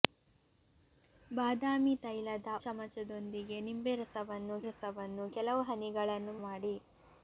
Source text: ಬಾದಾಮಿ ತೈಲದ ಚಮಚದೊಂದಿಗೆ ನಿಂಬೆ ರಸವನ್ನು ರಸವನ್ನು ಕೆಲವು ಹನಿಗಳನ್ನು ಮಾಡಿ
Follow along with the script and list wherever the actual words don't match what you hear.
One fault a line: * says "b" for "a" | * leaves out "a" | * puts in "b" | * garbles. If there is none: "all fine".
all fine